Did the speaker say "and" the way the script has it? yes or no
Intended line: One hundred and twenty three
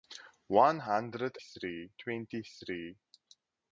no